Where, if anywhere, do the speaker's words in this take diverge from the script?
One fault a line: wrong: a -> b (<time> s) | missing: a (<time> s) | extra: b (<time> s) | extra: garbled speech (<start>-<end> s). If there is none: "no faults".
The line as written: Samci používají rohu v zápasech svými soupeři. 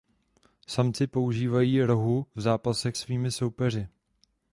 no faults